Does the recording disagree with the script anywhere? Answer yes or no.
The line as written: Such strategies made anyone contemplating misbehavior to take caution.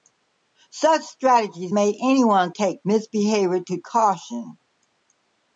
yes